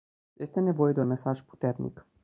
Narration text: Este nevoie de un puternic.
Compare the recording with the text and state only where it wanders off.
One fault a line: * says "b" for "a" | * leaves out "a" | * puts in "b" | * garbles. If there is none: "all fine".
* puts in "mesaj"